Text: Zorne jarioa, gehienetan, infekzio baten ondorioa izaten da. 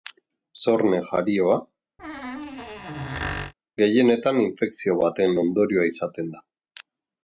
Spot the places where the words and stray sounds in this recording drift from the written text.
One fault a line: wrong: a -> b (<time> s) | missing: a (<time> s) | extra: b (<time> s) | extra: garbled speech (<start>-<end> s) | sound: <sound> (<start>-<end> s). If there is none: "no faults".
sound: squeak (2.0-3.5 s)